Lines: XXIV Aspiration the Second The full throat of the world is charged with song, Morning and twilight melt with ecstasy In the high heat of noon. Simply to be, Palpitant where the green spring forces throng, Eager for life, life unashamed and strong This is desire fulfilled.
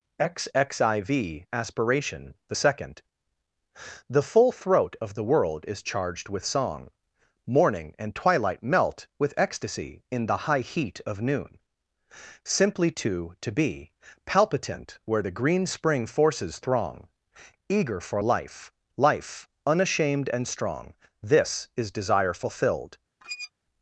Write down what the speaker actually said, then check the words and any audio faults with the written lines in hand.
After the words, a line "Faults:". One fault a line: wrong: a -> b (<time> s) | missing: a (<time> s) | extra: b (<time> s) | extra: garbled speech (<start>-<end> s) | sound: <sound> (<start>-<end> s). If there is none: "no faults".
XXIV Aspiration the Second The full throat of the world is charged with song, Morning and twilight melt with ecstasy In the high heat of noon. Simply to to be, Palpitant where the green spring forces throng, Eager for life, life unashamed and strong This is desire fulfilled.
Faults:
extra: to (13.4 s)
sound: squeak (23.2-23.5 s)